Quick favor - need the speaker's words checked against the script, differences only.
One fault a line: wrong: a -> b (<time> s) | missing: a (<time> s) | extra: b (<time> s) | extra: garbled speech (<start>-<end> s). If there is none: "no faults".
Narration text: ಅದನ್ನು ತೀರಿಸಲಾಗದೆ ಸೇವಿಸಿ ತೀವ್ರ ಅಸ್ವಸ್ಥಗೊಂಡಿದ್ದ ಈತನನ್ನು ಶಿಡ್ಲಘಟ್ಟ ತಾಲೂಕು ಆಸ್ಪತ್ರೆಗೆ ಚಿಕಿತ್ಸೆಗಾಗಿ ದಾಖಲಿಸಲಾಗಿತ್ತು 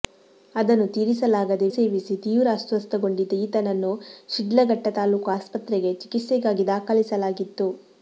no faults